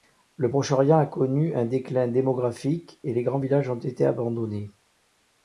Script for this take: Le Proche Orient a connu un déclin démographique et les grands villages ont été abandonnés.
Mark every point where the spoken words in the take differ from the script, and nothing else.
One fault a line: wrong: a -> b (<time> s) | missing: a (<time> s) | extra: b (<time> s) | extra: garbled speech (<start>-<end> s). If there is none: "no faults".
no faults